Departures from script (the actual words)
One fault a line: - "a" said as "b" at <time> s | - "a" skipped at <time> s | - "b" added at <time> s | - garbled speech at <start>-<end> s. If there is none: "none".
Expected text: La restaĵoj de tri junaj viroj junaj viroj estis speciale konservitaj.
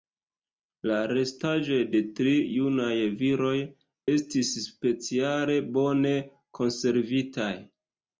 - "junaj viroj" skipped at 3.6 s
- "bone" added at 5.8 s